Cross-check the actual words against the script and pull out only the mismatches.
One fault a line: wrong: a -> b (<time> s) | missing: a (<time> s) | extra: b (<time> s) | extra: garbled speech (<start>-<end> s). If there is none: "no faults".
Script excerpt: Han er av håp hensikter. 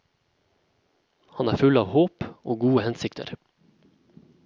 extra: full (1.6 s)
extra: og gode (2.3 s)